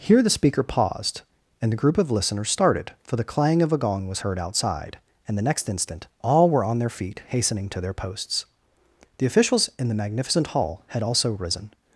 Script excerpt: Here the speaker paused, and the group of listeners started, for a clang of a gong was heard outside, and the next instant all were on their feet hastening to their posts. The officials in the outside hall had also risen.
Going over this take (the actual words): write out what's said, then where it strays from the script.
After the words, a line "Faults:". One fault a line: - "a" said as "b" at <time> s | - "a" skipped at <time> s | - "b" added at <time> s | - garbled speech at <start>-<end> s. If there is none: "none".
Here the speaker paused, and the group of listeners started, for the clang of a gong was heard outside, and the next instant all were on their feet hastening to their posts. The officials in the magnificent hall had also risen.
Faults:
- "a" said as "the" at 3.2 s
- "outside" said as "magnificent" at 9.9 s